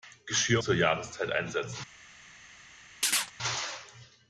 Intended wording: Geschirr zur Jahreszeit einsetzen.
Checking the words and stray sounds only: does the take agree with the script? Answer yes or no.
no